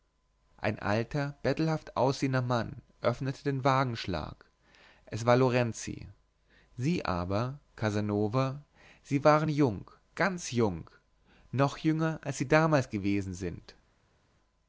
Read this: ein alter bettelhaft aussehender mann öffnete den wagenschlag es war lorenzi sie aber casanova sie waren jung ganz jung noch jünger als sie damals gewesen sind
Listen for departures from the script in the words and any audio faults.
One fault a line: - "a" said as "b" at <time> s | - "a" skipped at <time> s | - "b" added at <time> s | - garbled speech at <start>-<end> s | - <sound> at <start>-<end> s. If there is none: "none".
none